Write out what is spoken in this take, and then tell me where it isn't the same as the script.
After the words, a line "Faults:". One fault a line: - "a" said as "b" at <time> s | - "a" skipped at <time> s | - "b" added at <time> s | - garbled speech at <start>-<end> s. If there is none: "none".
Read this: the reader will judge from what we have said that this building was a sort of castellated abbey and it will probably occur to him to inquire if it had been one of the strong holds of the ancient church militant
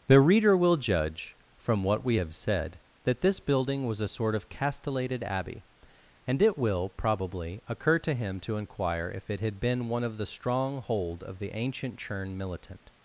the reader will judge from what we have said that this building was a sort of castellated abbey and it will probably occur to him to inquire if it had been one of the strong hold of the ancient churn militant
Faults:
- "holds" said as "hold" at 10.8 s
- "church" said as "churn" at 12.0 s